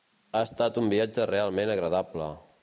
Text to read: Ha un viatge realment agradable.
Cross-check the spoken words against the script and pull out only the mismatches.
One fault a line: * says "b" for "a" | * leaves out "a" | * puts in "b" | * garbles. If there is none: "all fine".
* puts in "estat"